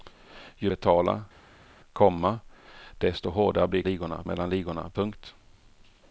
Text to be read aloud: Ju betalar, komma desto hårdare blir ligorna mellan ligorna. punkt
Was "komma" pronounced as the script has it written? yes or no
yes